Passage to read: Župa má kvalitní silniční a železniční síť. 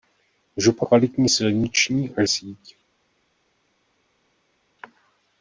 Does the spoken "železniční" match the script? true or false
false